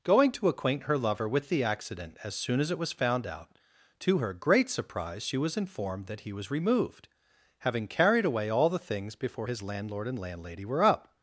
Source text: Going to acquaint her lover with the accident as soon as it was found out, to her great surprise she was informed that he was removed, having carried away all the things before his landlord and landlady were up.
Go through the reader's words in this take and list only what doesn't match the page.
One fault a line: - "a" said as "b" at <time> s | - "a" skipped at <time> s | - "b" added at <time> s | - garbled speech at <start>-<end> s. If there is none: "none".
none